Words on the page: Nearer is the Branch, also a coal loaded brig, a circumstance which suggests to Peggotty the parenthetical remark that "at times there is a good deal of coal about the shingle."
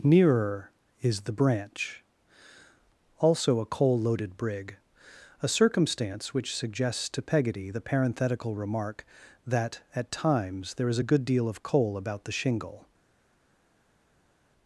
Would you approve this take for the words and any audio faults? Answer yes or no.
yes